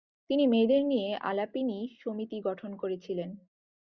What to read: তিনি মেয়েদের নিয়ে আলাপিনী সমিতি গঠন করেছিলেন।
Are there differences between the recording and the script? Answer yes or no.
no